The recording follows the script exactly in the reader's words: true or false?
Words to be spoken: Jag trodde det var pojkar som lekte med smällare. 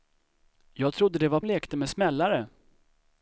false